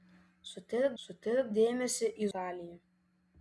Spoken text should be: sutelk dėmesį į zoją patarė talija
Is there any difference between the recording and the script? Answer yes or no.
yes